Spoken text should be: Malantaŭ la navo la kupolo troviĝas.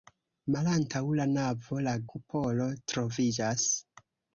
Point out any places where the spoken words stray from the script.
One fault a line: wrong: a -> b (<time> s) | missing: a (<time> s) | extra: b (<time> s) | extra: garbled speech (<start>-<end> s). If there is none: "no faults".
no faults